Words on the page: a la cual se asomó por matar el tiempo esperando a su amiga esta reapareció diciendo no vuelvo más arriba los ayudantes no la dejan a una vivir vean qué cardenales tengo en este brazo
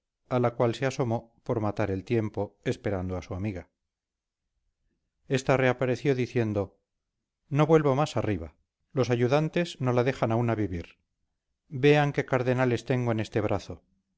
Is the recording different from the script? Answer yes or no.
no